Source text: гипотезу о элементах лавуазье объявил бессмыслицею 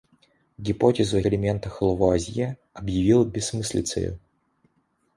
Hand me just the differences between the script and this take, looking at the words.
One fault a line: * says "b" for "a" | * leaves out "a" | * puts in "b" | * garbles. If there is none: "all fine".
all fine